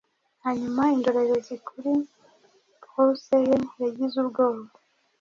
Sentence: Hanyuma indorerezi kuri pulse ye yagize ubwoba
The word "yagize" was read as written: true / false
true